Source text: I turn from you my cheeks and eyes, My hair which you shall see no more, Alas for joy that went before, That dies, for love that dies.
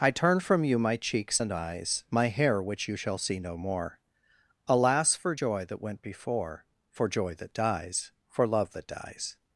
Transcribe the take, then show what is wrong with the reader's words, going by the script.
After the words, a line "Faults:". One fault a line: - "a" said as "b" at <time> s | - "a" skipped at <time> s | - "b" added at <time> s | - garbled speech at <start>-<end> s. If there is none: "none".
I turn from you my cheeks and eyes, My hair which you shall see no more, Alas for joy that went before, For joy that dies, for love that dies.
Faults:
- "For joy" added at 6.9 s